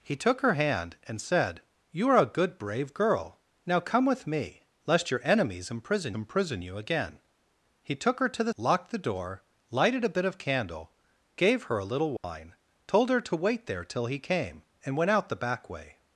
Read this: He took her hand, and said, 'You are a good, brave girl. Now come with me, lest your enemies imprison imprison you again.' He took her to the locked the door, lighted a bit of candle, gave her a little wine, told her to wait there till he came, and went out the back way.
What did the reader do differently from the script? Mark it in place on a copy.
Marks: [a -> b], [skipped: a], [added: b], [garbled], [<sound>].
He took her hand, and said, 'You are a good, brave girl. Now come with me, lest your enemies imprison imprison you again.' He took her to the locked the door, lighted a bit of candle, gave her a little wine, [dropout] told her to wait there till he came, and went out the back way.